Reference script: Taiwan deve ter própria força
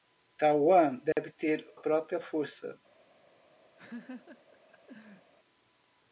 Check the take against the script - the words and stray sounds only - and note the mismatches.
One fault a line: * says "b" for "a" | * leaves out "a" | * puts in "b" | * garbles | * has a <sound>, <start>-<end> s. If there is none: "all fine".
* has a dropout, 1.1-1.2 s
* has a laugh, 3.8-5.3 s